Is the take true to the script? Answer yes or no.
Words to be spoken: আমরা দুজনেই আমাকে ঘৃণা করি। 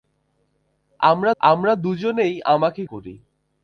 no